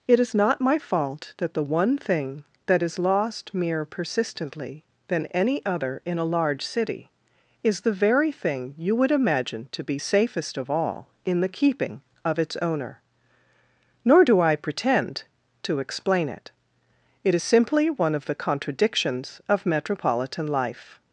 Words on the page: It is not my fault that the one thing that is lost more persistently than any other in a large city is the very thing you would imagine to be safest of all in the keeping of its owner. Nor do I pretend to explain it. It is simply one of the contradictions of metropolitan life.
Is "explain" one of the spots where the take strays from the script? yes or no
no